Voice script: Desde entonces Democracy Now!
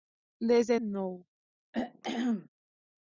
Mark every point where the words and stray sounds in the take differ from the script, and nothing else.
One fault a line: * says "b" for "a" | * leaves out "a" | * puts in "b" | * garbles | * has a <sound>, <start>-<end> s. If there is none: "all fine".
* leaves out "entonces Democracy"
* has a throat clearing, 1.7-2.5 s